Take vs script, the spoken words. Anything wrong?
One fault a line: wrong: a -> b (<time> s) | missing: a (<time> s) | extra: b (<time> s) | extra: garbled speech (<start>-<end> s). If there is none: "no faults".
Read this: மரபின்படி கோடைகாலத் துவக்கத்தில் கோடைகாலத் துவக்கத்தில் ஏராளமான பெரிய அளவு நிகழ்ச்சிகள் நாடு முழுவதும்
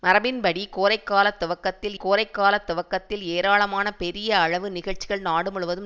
no faults